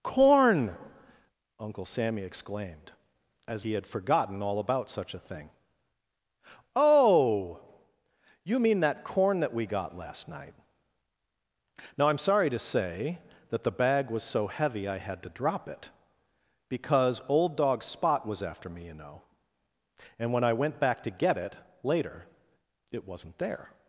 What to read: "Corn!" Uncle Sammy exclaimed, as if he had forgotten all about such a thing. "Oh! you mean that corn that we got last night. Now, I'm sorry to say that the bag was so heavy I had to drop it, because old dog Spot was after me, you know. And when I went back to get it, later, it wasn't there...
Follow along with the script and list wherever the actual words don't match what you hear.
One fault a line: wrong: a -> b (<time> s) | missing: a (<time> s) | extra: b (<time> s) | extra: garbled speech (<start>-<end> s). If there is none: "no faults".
missing: if (3.6 s)